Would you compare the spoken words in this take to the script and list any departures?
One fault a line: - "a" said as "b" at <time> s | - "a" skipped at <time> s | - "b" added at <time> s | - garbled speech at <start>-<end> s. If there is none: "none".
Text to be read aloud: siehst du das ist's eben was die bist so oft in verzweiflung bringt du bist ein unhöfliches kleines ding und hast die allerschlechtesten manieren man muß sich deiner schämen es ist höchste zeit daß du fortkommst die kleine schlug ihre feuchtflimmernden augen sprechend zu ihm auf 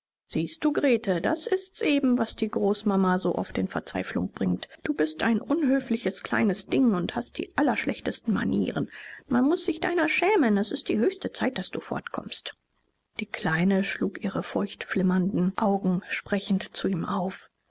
- "grete" added at 0.7 s
- "bist" said as "großmama" at 2.5 s
- "die" added at 10.9 s